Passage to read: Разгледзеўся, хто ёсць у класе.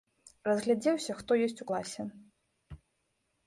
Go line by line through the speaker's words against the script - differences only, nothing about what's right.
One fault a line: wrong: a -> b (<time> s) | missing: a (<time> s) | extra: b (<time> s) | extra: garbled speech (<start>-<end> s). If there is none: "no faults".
no faults